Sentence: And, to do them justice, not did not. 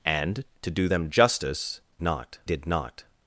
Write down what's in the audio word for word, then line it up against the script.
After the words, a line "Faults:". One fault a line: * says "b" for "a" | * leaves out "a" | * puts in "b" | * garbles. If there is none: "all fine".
And, to do them justice, not did not.
Faults:
all fine